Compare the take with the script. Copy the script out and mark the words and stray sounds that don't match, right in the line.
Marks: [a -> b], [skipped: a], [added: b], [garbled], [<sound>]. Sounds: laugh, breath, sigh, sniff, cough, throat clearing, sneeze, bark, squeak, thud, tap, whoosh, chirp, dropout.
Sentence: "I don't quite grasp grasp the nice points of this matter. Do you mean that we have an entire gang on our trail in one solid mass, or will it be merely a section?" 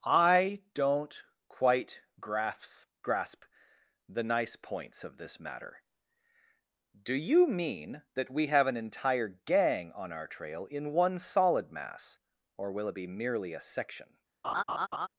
"I don't quite grasp grasp the nice points of this matter. Do you mean that we have an entire gang on our trail in one solid mass, or will it be merely a section?" [laugh]